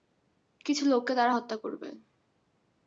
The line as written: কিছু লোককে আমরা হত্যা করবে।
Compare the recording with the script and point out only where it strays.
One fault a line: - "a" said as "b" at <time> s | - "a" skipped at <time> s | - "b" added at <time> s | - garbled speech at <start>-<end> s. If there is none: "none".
- "আমরা" said as "তারা" at 1.1 s